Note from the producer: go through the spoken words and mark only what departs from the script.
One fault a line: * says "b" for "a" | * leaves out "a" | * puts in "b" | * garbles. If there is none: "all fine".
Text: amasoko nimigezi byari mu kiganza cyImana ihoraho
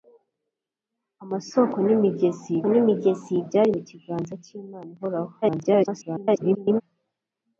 * puts in "nimigezi"
* garbles